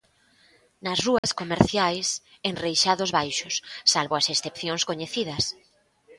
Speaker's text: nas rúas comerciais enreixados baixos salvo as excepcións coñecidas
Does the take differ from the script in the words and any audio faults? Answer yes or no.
yes